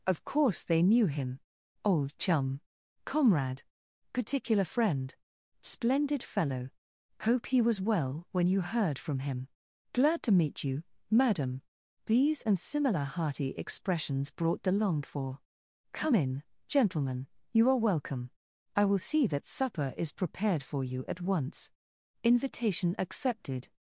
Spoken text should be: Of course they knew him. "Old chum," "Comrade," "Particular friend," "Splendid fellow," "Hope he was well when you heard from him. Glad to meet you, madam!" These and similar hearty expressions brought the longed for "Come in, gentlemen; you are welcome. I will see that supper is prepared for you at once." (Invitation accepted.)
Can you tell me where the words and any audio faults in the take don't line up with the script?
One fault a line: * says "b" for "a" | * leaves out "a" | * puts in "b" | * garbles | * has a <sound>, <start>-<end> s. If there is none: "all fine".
all fine